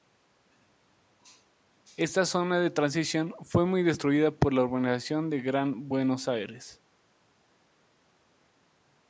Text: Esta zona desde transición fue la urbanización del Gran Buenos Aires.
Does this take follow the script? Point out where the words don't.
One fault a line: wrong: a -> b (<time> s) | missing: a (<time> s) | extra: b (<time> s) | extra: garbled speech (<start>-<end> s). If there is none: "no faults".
wrong: desde -> de (2.6 s)
extra: muy destruida por (3.7 s)